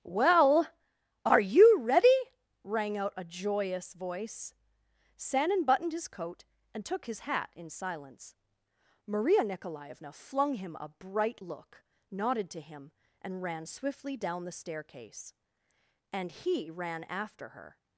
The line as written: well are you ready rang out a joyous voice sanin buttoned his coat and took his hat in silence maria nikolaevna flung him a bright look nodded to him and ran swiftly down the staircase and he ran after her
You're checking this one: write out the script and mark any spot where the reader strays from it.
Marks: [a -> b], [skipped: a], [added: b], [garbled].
well are you ready rang out a joyous voice sanin buttoned his coat and took his hat in silence maria nikolaevna flung him a bright look nodded to him and ran swiftly down the staircase and he ran after her